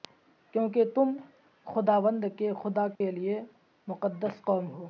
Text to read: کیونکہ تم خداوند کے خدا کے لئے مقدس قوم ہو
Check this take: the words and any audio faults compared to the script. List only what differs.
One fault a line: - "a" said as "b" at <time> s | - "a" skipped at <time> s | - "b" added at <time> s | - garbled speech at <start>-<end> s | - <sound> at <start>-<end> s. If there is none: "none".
- dropout at 3.0-3.0 s